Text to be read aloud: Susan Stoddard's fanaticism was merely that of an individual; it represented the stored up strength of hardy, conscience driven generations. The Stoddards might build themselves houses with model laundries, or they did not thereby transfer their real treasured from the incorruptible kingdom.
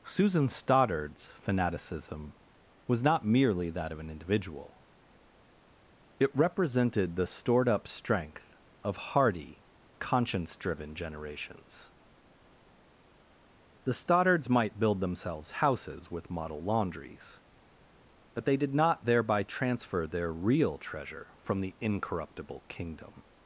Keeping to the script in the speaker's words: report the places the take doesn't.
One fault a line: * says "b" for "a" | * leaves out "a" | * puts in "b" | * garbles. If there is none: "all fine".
* puts in "not"
* says "but" for "or"
* says "treasure" for "treasured"